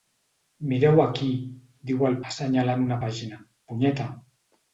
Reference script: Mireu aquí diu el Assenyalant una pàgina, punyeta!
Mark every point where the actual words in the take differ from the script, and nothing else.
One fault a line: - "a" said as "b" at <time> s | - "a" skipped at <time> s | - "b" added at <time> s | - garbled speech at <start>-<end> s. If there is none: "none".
none